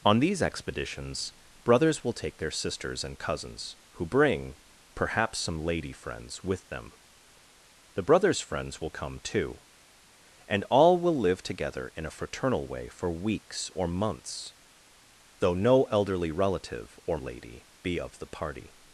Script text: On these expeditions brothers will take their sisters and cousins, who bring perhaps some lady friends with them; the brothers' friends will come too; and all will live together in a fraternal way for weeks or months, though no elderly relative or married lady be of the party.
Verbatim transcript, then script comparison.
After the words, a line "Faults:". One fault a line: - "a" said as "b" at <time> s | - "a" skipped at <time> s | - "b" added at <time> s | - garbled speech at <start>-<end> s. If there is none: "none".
On these expeditions brothers will take their sisters and cousins, who bring perhaps some lady friends with them; the brothers' friends will come too; and all will live together in a fraternal way for weeks or months, though no elderly relative or lady be of the party.
Faults:
- "married" skipped at 17.2 s